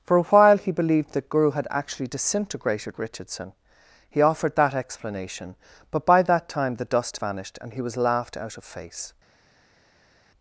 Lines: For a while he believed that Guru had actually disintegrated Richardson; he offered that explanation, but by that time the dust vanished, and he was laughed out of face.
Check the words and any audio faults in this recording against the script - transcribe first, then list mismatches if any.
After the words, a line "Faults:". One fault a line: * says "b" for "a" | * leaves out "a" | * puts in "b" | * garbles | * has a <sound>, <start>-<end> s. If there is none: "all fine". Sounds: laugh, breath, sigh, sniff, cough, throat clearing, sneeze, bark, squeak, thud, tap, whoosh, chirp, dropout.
For a while he believed that Guru had actually disintegrated Richardson; he offered that explanation, but by that time the dust vanished, and he was laughed out of face.
Faults:
all fine